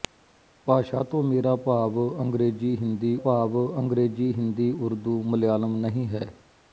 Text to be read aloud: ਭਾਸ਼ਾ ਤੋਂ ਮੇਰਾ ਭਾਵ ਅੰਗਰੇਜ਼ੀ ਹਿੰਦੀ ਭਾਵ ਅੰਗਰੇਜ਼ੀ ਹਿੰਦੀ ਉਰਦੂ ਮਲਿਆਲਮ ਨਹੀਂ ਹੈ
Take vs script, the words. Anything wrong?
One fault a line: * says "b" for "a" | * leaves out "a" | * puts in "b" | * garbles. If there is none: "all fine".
all fine